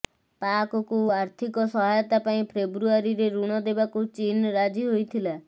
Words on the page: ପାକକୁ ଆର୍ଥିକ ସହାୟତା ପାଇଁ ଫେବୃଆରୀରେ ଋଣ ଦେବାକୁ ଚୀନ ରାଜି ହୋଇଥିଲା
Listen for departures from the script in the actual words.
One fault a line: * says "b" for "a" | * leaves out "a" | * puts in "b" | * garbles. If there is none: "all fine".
all fine